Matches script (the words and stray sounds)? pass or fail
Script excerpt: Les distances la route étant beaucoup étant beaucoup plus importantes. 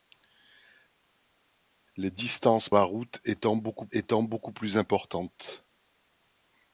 pass